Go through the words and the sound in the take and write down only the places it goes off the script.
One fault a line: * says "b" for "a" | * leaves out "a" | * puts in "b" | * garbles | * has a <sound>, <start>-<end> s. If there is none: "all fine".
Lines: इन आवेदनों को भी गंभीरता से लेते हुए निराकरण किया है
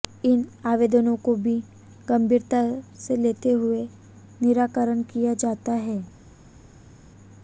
* puts in "जाता"